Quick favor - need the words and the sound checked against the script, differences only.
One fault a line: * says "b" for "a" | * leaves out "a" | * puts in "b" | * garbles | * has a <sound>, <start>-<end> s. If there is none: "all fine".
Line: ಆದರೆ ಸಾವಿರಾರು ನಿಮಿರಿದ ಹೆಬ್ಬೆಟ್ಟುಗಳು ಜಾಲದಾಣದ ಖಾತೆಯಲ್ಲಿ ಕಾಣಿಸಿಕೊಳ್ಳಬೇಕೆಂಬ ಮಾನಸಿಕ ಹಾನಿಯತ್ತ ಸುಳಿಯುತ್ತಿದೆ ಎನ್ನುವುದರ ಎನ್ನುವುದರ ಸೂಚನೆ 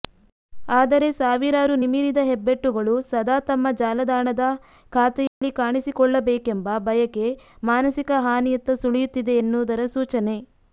* puts in "ಸದಾ ತಮ್ಮ"
* has a dropout, 5.3-5.4 s
* puts in "ಬಯಕೆ"
* leaves out "ಎನ್ನುವುದರ"